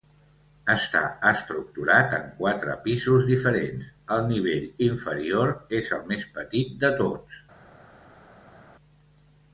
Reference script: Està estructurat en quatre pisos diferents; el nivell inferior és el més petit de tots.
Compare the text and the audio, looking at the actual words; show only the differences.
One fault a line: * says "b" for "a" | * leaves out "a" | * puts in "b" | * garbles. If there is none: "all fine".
all fine